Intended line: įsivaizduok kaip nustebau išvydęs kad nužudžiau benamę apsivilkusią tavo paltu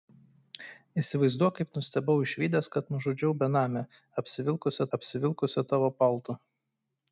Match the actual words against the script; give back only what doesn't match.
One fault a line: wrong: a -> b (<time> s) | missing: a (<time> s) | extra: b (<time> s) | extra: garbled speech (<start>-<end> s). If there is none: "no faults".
extra: apsivilkusią (5.0 s)